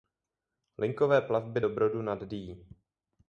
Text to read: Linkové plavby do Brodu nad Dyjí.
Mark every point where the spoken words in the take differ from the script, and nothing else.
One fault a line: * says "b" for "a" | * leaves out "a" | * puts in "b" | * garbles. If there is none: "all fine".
all fine